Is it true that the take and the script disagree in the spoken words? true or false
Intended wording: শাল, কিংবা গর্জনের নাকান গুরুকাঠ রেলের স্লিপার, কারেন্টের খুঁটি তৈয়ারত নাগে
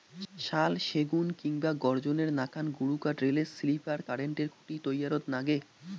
true